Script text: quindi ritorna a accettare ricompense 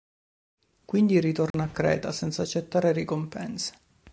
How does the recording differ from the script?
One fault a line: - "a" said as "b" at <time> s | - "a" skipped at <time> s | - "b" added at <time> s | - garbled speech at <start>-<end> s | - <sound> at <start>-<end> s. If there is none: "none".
- dropout at 1.5-1.5 s
- "creta senza" added at 1.7 s